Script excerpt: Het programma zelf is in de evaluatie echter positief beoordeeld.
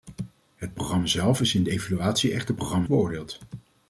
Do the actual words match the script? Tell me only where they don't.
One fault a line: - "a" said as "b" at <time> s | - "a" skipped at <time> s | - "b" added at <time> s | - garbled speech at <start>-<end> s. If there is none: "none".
- "positief" said as "programma" at 2.5 s